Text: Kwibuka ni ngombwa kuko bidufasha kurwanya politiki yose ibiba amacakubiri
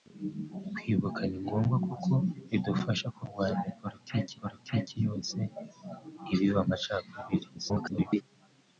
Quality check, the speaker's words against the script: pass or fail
fail